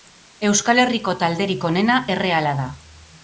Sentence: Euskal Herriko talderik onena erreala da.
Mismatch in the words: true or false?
false